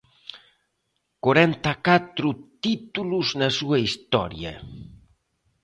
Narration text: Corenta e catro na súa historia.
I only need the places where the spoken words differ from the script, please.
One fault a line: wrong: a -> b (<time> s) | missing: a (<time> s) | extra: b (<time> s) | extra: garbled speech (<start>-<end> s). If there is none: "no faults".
extra: títulos (2.6 s)